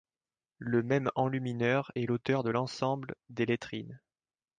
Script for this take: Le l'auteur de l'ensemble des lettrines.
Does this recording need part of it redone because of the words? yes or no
yes